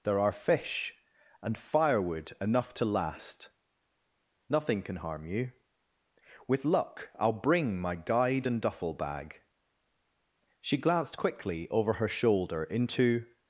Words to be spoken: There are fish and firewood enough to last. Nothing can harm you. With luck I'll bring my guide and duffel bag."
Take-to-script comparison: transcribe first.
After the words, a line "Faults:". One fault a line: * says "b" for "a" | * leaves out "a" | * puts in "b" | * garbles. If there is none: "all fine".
There are fish and firewood enough to last. Nothing can harm you. With luck I'll bring my guide and duffel bag." She glanced quickly over her shoulder into
Faults:
* puts in "She glanced quickly over her shoulder into"